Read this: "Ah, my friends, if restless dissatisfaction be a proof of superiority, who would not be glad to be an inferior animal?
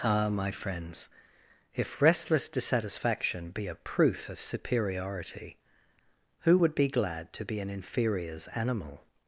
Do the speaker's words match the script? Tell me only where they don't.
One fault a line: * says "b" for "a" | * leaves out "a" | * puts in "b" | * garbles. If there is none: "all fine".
* leaves out "not"
* says "inferiors" for "inferior"